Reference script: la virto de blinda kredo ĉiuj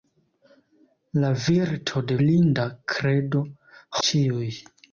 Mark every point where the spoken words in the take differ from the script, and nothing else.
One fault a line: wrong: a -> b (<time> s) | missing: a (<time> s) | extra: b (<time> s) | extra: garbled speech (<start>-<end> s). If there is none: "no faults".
no faults